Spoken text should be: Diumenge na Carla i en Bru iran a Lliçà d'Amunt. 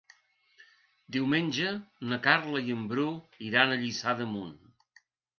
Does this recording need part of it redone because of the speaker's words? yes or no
no